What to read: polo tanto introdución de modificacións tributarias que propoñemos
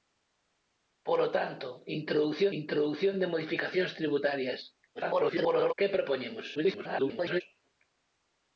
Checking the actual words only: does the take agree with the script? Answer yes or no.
no